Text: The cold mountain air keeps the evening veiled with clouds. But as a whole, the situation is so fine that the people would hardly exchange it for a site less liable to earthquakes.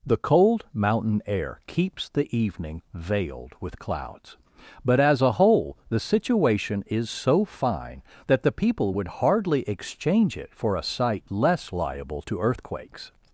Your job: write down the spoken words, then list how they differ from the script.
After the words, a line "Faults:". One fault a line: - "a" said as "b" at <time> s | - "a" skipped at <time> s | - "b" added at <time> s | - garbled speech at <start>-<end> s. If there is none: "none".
The cold mountain air keeps the evening veiled with clouds. But as a whole, the situation is so fine that the people would hardly exchange it for a site less liable to earthquakes.
Faults:
none